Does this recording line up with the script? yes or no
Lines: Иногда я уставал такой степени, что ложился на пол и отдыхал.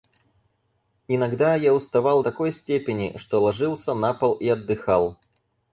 yes